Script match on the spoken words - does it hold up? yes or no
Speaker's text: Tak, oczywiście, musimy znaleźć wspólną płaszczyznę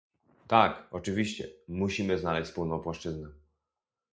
yes